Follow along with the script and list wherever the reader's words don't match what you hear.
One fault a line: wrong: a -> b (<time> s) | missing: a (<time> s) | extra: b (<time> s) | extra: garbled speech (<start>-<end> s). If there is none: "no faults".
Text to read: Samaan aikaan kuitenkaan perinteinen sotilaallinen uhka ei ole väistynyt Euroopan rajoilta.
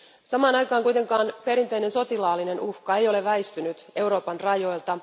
no faults